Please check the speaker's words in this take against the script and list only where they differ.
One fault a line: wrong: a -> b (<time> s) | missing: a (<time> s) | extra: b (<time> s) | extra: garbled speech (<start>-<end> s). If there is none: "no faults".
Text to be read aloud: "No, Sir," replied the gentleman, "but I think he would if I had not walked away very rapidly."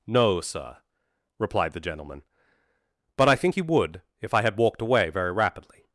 missing: not (4.6 s)